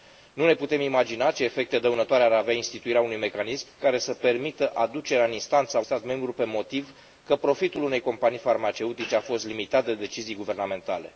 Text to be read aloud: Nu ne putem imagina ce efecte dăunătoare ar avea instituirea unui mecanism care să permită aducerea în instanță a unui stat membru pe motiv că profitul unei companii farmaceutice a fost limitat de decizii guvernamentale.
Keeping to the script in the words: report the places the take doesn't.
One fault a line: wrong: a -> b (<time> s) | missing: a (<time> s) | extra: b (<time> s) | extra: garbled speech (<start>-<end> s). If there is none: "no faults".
missing: unui (5.8 s)